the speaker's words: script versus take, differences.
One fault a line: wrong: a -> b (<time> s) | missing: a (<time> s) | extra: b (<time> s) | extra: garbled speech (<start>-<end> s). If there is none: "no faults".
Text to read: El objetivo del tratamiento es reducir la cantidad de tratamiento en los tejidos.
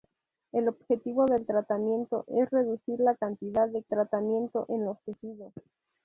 no faults